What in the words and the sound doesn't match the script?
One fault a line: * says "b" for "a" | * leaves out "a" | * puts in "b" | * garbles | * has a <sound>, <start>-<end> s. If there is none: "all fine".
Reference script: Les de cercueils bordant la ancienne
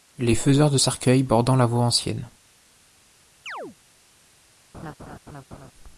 * puts in "faiseurs"
* puts in "voie"
* has a chirp, 3.5-3.8 s
* has a laugh, 4.7-5.7 s